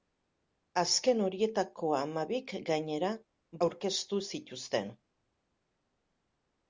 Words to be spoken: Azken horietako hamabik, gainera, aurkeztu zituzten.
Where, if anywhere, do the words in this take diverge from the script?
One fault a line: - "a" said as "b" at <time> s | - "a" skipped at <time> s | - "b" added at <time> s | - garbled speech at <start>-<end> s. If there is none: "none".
none